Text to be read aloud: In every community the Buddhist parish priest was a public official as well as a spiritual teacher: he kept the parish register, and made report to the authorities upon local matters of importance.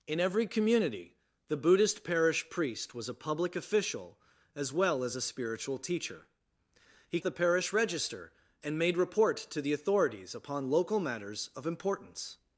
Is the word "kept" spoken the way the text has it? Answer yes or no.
no